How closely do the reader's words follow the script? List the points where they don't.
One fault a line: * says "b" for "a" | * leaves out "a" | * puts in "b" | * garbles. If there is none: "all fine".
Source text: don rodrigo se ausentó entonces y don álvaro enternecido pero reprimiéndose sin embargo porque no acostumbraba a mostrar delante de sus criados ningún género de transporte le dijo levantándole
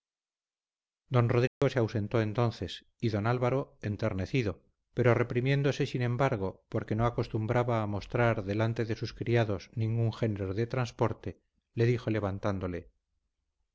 all fine